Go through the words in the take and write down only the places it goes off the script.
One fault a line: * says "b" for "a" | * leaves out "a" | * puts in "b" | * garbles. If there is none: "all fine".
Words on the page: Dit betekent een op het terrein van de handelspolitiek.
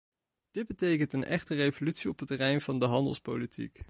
* puts in "echte revolutie"